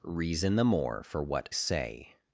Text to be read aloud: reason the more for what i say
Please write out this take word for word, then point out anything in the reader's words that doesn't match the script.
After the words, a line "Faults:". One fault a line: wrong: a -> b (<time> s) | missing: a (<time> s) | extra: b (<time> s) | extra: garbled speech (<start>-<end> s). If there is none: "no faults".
reason the more for what say
Faults:
missing: i (1.5 s)